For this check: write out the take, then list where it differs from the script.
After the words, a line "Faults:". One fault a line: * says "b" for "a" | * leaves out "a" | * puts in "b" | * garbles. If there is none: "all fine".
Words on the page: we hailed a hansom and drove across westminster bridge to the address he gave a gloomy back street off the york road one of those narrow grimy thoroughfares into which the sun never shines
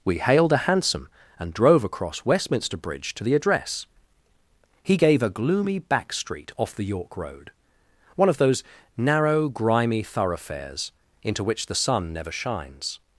we hailed a hansom and drove across westminster bridge to the address he gave a gloomy back street off the york road one of those narrow grimy thoroughfares into which the sun never shines
Faults:
all fine